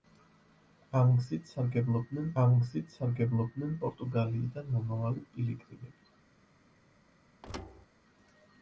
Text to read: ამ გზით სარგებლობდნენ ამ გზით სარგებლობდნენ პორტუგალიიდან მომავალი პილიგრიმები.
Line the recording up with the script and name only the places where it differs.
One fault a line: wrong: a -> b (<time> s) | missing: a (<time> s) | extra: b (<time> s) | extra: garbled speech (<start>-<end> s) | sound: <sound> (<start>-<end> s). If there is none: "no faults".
sound: thud (7.4-7.9 s)